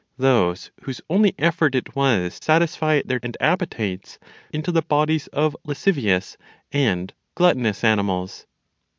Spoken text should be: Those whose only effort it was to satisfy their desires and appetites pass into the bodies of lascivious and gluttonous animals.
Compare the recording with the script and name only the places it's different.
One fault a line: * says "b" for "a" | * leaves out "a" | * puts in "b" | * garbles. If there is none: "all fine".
* leaves out "to"
* leaves out "desires"
* leaves out "pass"